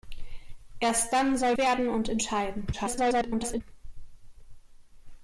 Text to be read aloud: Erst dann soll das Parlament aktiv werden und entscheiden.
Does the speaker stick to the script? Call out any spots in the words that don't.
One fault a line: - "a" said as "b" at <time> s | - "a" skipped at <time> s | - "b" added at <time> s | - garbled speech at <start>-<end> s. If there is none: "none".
- "das Parlament aktiv" skipped at 1.6 s
- garbled speech at 2.7-3.6 s